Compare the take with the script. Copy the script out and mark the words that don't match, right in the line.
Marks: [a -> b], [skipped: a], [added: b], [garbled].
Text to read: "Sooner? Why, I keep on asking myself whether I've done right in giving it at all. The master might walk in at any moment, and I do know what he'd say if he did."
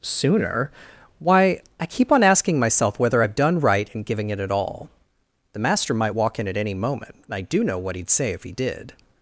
"Sooner? Why, I keep on asking myself whether I've done right in giving it at all. The master might walk in at any moment, and I do know what he'd say if he did."